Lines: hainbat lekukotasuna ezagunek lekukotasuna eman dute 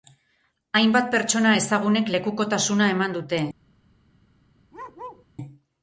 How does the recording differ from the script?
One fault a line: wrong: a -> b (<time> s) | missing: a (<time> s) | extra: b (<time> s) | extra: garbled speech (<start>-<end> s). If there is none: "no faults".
wrong: lekukotasuna -> pertsona (1.1 s)